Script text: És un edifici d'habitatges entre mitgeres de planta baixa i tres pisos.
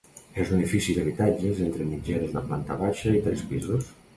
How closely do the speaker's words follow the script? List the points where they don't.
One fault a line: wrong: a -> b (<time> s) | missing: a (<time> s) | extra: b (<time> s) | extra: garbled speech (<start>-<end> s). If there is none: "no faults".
no faults